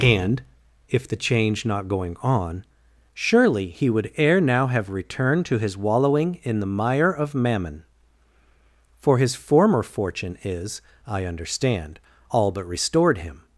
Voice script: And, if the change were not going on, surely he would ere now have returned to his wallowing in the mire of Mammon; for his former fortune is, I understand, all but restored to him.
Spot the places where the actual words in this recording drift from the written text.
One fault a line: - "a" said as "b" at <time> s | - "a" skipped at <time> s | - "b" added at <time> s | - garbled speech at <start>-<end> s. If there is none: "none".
- "were" skipped at 1.6 s
- "to" skipped at 13.2 s